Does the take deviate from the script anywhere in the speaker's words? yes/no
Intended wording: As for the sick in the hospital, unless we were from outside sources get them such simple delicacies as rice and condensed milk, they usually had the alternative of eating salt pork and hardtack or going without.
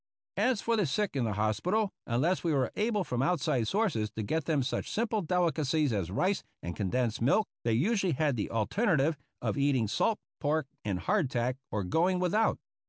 yes